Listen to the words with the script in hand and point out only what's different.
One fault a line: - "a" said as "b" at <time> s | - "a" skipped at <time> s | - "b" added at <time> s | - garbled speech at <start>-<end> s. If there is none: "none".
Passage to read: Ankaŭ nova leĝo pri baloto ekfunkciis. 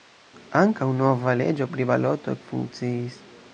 none